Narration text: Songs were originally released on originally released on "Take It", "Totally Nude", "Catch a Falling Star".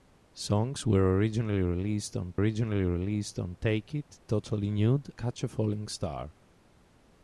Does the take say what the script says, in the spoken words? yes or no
yes